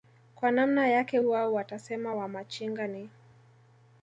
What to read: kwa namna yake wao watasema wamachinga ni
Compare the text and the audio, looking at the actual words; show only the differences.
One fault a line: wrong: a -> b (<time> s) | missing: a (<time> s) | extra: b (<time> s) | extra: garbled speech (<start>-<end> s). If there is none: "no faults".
no faults